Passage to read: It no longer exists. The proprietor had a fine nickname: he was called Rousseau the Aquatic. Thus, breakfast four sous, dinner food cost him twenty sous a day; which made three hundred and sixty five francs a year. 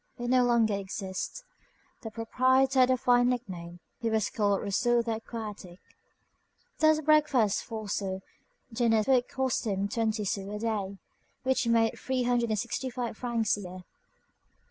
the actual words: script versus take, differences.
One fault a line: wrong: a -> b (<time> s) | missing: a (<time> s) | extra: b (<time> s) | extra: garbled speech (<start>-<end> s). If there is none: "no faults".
no faults